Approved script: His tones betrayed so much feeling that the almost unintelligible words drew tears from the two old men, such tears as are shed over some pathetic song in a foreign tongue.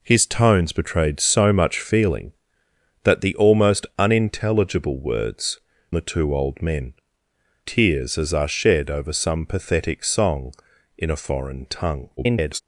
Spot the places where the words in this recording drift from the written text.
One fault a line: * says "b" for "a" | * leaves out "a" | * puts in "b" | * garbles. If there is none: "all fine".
* leaves out "drew tears from"
* leaves out "such"
* garbles